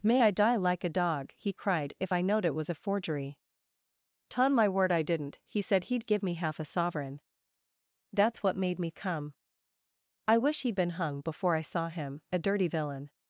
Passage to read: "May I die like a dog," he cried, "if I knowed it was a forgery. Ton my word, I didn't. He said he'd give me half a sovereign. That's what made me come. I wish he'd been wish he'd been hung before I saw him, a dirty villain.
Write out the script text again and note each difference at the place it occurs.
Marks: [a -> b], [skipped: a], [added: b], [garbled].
"May I die like a dog," he cried, "if I knowed it was a forgery. Ton my word, I didn't. He said he'd give me half a sovereign. That's what made me come. I wish he'd been [skipped: wish he'd been] hung before I saw him, a dirty villain.